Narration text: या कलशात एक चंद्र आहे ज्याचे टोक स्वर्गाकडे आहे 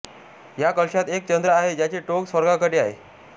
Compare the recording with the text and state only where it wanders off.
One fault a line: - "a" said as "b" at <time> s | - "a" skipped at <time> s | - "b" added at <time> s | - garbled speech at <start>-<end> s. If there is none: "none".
none